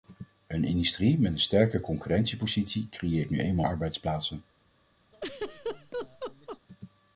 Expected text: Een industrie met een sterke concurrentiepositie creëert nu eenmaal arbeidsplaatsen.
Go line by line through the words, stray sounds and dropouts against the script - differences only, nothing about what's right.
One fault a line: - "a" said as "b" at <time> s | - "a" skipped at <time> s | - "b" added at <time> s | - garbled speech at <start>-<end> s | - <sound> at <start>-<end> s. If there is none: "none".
- laugh at 5.1-6.6 s